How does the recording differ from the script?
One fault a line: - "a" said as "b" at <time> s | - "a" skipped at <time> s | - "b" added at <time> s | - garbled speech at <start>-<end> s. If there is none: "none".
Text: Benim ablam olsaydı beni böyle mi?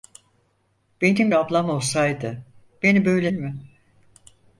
none